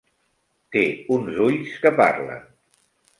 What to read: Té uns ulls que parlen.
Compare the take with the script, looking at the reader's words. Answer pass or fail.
pass